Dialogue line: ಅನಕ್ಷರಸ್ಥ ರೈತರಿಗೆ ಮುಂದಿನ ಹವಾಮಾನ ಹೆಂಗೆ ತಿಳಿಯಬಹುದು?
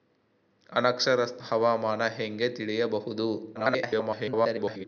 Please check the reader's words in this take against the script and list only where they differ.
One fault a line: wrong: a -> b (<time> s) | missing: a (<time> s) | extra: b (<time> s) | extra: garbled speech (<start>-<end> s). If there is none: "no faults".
missing: ರೈತರಿಗೆ ಮುಂದಿನ (1.4 s)
extra: garbled speech (3.5-4.9 s)